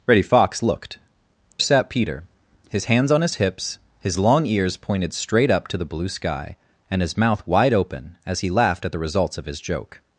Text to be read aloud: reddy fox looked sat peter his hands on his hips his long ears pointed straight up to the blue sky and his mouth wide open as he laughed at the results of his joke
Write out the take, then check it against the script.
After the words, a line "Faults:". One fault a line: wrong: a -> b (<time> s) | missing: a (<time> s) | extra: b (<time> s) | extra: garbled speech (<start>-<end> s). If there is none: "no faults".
reddy fox looked sat peter his hands on his hips his long ears pointed straight up to the blue sky and his mouth wide open as he laughed at the results of his joke
Faults:
no faults